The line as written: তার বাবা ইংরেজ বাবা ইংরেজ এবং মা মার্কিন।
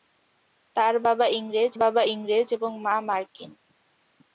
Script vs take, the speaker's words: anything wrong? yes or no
no